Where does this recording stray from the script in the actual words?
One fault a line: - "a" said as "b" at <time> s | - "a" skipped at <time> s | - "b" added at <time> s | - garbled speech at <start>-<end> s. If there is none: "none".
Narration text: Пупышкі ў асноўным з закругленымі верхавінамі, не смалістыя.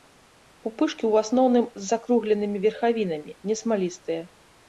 none